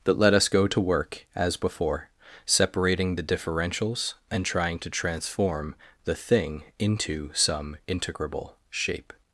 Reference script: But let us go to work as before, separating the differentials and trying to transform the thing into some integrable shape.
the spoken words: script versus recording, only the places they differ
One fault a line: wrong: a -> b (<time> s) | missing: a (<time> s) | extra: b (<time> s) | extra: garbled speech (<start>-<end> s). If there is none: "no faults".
wrong: But -> That (0.0 s)